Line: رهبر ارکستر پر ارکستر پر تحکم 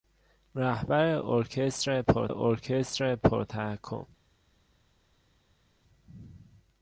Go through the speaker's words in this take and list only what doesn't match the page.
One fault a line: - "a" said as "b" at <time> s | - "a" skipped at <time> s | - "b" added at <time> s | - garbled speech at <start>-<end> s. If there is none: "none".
none